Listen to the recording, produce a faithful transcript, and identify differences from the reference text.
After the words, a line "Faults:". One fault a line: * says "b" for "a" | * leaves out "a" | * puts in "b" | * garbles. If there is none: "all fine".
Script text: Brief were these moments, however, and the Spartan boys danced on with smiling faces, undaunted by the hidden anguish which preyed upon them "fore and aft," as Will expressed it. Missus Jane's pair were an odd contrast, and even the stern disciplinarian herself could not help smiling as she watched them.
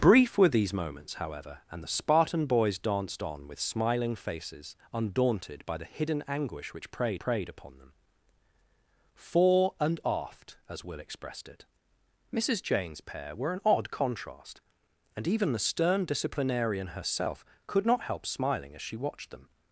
Brief were these moments, however, and the Spartan boys danced on with smiling faces, undaunted by the hidden anguish which preyed preyed upon them "fore and aft," as Will expressed it. Missus Jane's pair were an odd contrast, and even the stern disciplinarian herself could not help smiling as she watched them.
Faults:
* puts in "preyed"